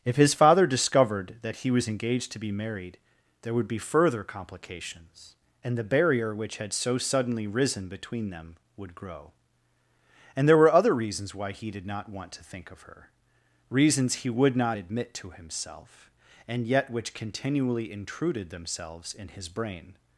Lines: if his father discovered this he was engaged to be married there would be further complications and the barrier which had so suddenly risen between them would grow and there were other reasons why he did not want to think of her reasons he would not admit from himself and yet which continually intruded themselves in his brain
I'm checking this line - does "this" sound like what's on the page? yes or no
no